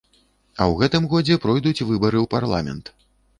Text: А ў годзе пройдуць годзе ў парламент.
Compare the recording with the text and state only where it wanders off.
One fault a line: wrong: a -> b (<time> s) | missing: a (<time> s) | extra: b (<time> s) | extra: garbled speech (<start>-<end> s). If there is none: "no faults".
extra: гэтым (0.8 s)
wrong: годзе -> выбары (1.9 s)